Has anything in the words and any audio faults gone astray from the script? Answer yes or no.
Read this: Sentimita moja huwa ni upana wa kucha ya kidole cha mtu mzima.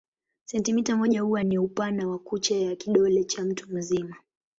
no